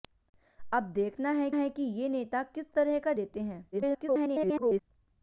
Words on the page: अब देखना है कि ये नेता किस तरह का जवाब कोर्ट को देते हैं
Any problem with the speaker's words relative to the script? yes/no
yes